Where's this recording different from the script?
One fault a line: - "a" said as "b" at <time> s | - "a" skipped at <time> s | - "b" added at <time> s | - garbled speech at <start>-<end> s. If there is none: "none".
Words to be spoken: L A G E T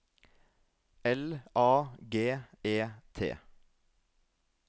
none